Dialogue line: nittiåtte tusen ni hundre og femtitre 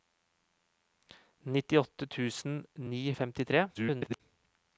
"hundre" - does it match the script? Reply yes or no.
no